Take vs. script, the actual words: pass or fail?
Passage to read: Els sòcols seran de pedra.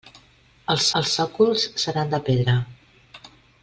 fail